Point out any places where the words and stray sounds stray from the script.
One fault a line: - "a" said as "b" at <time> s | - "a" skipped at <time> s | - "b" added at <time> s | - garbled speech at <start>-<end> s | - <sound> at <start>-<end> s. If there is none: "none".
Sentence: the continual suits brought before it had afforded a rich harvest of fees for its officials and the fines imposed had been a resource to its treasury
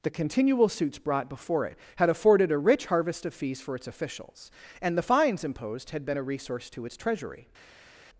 none